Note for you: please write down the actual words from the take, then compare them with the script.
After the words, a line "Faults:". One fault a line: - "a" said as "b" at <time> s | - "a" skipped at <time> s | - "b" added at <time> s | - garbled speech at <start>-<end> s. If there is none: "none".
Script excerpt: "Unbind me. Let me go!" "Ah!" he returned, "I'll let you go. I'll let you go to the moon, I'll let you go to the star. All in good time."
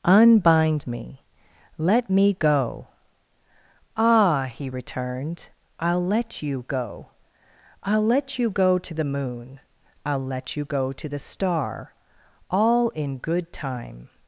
"Unbind me. Let me go!" "Ah!" he returned, "I'll let you go. I'll let you go to the moon, I'll let you go to the star. All in good time."
Faults:
none